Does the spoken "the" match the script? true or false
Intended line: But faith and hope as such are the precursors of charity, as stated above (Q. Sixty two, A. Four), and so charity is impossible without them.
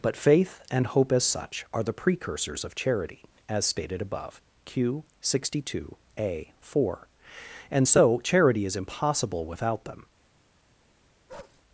true